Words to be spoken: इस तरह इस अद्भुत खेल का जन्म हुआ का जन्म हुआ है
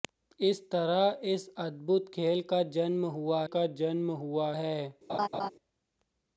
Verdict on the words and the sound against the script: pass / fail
fail